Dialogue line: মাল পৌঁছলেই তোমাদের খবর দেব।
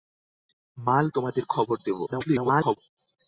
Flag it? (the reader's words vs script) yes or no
yes